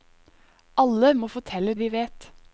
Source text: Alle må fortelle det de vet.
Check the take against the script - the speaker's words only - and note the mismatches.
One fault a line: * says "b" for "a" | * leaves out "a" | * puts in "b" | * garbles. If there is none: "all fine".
* leaves out "det"